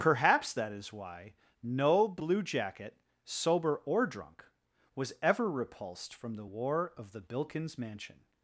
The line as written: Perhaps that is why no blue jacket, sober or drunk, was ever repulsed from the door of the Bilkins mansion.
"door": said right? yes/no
no